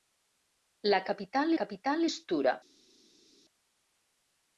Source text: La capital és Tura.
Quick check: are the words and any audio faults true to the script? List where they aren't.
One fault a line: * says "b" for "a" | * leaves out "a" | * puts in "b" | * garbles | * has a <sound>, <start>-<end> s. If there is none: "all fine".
* puts in "capital"